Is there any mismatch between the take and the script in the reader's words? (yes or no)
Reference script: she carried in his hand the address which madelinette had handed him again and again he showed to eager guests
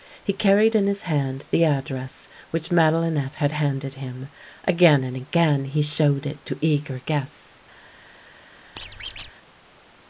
yes